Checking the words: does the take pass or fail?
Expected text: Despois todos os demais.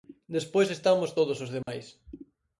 fail